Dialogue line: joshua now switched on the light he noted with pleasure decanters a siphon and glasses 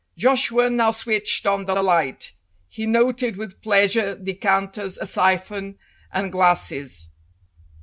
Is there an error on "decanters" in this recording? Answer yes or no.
no